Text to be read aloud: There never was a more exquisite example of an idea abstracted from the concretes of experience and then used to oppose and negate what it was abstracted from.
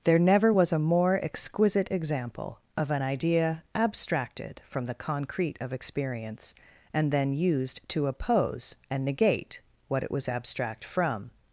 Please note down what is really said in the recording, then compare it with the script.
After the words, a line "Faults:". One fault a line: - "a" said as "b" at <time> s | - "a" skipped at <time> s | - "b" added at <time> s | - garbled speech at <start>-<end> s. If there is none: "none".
There never was a more exquisite example of an idea abstracted from the concrete of experience and then used to oppose and negate what it was abstract from.
Faults:
- "concretes" said as "concrete" at 4.9 s
- "abstracted" said as "abstract" at 10.3 s